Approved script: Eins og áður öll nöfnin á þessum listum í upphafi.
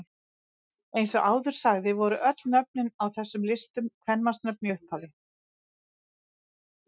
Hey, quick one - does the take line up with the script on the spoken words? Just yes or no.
no